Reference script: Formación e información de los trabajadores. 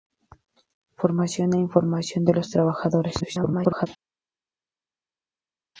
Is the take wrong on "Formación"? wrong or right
right